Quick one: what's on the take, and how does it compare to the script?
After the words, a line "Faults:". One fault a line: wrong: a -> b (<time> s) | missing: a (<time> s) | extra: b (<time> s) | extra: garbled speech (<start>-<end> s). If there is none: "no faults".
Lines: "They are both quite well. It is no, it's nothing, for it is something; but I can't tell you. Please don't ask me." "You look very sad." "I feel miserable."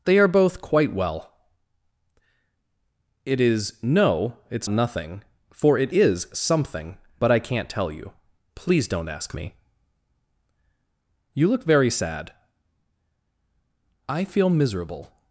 "They are both quite well. It is no, it's nothing, for it is something; but I can't tell you. Please don't ask me." "You look very sad." "I feel miserable."
Faults:
no faults